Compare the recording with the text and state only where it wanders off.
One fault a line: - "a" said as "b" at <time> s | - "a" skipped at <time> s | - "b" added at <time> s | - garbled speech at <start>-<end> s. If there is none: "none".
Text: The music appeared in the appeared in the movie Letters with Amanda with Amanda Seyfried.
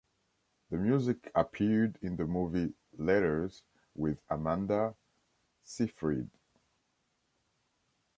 - "appeared in the" skipped at 2.2 s
- "with Amanda" skipped at 4.9 s